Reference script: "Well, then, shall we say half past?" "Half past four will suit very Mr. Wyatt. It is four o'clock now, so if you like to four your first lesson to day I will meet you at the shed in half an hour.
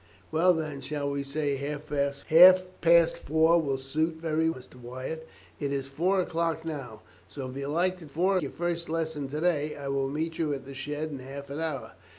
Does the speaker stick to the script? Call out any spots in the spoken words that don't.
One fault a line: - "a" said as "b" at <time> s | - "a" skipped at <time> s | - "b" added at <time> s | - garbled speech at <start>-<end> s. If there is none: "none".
none